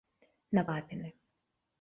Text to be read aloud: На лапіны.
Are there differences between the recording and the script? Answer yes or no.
no